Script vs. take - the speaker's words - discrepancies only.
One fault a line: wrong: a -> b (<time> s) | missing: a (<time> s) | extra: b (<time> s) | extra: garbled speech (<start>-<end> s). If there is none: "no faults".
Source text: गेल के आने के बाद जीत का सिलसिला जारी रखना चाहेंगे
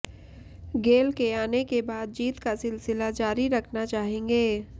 no faults